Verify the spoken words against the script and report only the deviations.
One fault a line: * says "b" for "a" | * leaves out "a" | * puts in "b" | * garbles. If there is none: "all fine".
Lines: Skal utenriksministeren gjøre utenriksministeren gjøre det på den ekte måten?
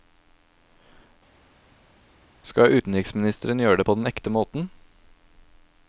* leaves out "utenriksministeren gjøre"